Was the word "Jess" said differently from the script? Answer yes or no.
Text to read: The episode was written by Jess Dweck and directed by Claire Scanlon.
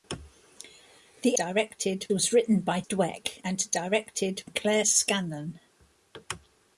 yes